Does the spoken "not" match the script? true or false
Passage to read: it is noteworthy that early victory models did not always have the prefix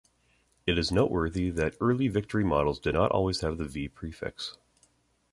true